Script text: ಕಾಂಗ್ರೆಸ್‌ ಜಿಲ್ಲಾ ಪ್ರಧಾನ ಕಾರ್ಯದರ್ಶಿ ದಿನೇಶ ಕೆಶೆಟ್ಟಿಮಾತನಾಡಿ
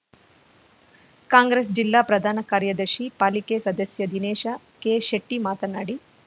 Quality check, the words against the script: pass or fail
fail